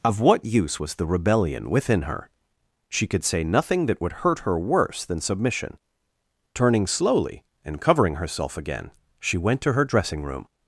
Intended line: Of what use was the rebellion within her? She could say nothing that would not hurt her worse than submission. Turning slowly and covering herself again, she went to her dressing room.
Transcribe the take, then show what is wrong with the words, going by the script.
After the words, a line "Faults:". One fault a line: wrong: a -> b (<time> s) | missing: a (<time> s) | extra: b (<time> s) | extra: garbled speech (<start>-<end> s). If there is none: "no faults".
Of what use was the rebellion within her? She could say nothing that would hurt her worse than submission. Turning slowly and covering herself again, she went to her dressing room.
Faults:
missing: not (4.1 s)